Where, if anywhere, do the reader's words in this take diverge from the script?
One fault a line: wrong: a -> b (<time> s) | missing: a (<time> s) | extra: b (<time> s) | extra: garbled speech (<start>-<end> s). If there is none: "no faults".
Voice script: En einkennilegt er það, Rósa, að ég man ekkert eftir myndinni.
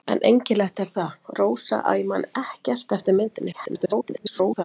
extra: garbled speech (3.5-4.6 s)